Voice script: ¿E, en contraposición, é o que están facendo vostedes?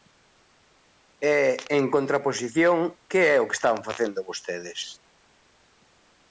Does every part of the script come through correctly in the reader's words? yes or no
no